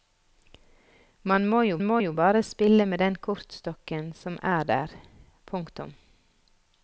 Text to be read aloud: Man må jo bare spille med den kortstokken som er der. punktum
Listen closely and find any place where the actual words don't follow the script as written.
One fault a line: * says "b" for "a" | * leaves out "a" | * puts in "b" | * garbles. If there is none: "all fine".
* puts in "må jo"